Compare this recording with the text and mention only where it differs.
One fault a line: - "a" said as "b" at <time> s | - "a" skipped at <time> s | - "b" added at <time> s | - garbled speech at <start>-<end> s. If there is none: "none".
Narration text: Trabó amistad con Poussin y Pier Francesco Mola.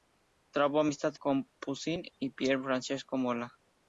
none